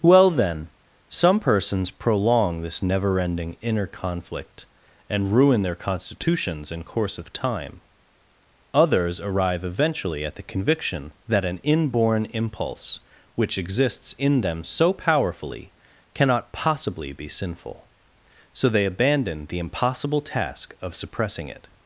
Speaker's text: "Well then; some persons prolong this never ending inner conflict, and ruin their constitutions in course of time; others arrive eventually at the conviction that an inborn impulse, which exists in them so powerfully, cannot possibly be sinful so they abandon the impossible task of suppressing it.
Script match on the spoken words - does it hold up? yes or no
yes